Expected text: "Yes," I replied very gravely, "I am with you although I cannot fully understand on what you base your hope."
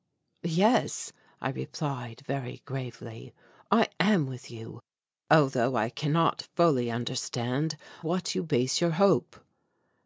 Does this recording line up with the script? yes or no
no